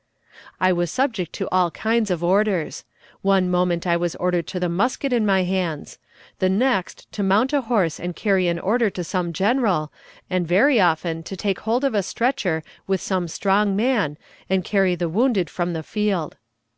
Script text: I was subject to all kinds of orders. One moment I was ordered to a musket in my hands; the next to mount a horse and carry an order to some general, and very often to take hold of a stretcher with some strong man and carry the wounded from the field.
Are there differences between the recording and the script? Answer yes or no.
no